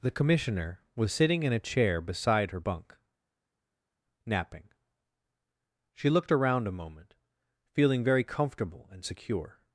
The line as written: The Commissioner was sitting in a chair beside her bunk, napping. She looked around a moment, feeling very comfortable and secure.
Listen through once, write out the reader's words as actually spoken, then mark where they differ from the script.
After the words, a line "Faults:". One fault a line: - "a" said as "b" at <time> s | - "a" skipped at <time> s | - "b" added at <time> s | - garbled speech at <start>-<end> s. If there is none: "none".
The Commissioner was sitting in a chair beside her bunk, napping. She looked around a moment, feeling very comfortable and secure.
Faults:
none